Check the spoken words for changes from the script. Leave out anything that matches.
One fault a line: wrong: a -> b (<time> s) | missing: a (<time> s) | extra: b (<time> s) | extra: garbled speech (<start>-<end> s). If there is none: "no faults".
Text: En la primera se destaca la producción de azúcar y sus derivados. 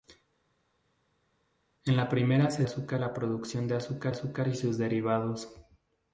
wrong: destaca -> azúcar (2.6 s)
extra: azúcar (4.1 s)